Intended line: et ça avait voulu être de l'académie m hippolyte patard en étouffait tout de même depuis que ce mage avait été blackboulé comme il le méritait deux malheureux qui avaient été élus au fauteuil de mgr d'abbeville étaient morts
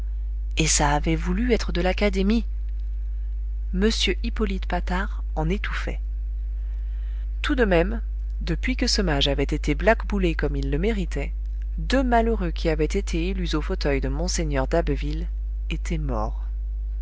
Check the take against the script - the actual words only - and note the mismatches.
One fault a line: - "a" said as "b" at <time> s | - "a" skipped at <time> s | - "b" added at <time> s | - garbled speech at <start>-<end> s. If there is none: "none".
none